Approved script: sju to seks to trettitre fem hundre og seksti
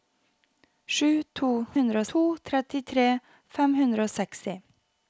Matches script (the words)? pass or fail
fail